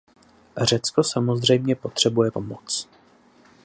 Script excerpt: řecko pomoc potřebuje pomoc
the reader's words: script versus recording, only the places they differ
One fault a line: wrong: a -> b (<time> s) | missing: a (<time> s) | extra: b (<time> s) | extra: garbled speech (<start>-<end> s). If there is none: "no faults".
wrong: pomoc -> samozřejmě (1.0 s)